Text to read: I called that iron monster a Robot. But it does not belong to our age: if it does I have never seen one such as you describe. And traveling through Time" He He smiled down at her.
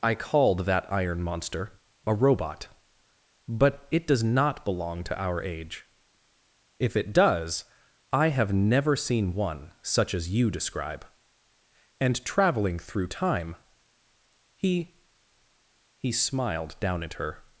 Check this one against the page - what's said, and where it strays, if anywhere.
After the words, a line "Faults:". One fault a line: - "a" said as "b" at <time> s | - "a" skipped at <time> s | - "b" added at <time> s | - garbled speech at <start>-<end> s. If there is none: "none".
I called that iron monster a Robot. But it does not belong to our age: if it does I have never seen one such as you describe. And traveling through Time" He He smiled down at her.
Faults:
none